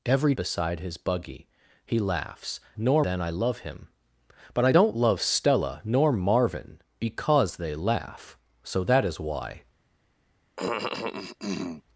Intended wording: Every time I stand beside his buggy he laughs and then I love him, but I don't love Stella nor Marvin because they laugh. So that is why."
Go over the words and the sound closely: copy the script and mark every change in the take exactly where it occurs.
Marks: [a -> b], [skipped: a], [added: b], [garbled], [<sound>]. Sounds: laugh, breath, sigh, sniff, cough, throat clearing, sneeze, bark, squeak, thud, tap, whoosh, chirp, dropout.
Every [skipped: time I stand] beside his buggy he laughs [and -> nor] then I love him, but I don't love Stella nor Marvin because they laugh. So that is why." [cough]